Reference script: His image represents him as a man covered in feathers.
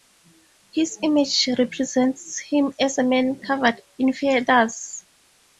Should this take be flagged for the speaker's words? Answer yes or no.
no